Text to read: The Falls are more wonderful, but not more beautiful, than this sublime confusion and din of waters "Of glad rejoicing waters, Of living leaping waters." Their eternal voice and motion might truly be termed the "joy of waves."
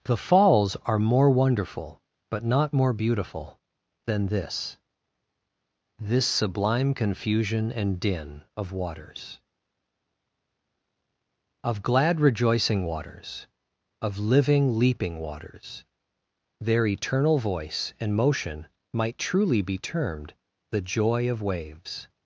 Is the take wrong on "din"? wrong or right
right